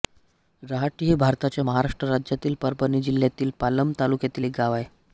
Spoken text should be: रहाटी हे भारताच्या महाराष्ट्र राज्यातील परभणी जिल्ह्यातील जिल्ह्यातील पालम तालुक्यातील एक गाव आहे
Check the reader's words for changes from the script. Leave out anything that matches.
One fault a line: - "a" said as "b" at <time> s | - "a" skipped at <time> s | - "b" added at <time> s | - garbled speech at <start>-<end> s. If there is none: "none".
- "जिल्ह्यातील" skipped at 3.5 s